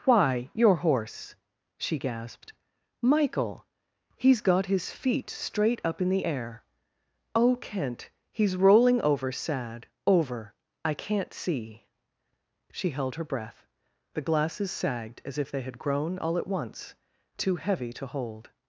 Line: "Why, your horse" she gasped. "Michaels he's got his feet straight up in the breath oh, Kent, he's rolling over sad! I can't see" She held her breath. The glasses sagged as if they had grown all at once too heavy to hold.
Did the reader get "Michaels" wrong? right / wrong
wrong